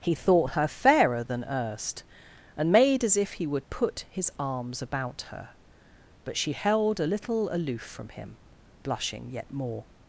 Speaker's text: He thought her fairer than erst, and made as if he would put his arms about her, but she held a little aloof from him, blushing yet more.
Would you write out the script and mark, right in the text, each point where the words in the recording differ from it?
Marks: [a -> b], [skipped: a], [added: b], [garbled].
He thought her fairer than erst, and made as if he would put his arms about her, but she held a little aloof from him, blushing yet more.